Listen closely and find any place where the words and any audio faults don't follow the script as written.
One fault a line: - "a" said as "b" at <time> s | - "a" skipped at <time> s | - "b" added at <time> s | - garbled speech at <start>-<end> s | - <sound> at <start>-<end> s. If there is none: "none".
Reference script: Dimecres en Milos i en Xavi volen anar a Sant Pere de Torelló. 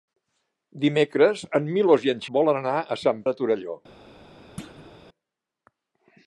- "Xavi" skipped at 2.2 s
- "Pere" skipped at 3.2 s
- thud at 4.6-4.9 s